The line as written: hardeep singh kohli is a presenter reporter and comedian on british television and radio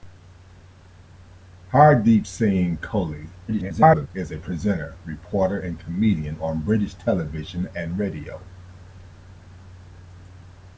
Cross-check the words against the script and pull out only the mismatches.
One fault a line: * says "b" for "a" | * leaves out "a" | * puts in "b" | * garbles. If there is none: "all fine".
* garbles